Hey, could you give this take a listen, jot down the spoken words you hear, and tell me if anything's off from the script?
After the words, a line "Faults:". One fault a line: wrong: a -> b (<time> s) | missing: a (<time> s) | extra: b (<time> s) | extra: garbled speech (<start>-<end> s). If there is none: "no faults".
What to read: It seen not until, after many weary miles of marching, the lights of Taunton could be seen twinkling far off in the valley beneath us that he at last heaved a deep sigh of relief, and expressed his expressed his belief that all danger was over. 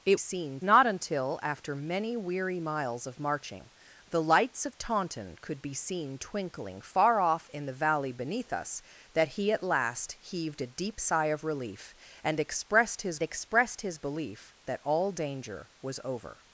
It seen not until, after many weary miles of marching, the lights of Taunton could be seen twinkling far off in the valley beneath us that he at last heaved a deep sigh of relief, and expressed his expressed his belief that all danger was over.
Faults:
no faults